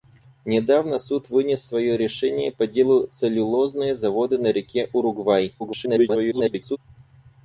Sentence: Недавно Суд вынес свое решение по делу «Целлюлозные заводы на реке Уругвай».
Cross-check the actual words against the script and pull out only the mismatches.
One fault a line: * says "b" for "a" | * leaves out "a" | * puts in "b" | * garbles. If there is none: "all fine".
* garbles